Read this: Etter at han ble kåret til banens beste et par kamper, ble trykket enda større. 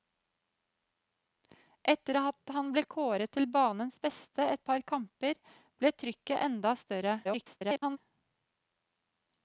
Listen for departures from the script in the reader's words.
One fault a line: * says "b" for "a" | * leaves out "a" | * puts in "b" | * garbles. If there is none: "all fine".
* garbles